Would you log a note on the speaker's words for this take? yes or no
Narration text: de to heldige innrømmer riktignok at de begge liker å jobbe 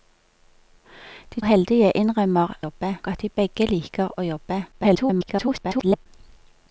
yes